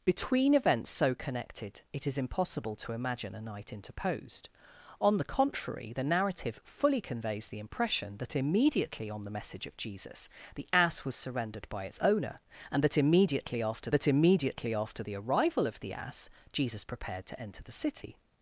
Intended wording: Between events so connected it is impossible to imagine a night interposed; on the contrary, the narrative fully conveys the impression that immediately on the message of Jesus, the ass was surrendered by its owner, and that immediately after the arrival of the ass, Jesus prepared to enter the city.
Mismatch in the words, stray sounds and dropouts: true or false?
true